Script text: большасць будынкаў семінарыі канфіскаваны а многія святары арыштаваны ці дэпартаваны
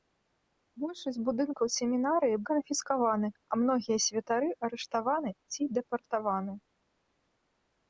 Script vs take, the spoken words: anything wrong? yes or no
no